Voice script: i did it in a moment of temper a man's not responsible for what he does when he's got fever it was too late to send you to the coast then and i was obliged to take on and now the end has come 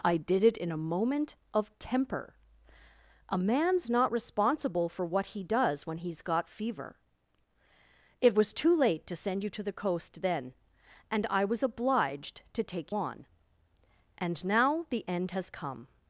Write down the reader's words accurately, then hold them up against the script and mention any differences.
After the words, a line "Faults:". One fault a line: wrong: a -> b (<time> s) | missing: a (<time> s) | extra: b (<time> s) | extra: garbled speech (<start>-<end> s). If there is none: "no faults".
i did it in a moment of temper a man's not responsible for what he does when he's got fever it was too late to send you to the coast then and i was obliged to take on and now the end has come
Faults:
no faults